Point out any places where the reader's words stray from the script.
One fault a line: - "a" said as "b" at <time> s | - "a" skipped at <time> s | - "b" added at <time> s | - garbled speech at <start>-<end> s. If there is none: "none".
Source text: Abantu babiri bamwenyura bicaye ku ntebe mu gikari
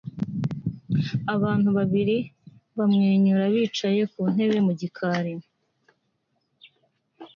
none